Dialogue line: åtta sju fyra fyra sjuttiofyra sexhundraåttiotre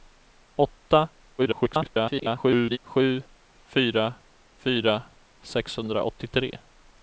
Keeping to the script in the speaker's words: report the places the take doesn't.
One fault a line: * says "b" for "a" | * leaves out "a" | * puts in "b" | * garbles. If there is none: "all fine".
* garbles
* leaves out "sjuttiofyra"